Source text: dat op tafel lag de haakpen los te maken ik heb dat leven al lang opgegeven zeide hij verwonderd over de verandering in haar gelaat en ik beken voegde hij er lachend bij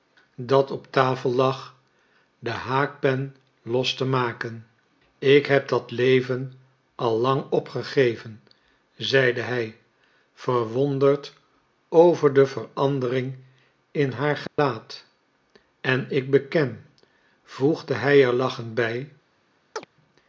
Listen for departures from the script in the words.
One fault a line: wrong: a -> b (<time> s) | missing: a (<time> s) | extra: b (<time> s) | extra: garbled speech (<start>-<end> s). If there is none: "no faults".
no faults